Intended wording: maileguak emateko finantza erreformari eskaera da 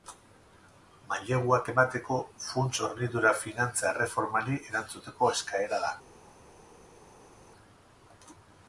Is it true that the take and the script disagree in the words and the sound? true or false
true